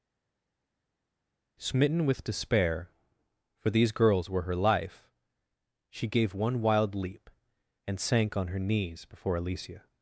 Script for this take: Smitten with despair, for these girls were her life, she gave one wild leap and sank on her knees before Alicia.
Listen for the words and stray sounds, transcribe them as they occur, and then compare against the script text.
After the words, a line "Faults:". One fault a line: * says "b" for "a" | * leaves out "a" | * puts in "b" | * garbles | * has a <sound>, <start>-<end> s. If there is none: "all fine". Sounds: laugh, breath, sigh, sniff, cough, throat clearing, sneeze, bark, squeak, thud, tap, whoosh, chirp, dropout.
Smitten with despair, for these girls were her life, she gave one wild leap and sank on her knees before Alicia.
Faults:
all fine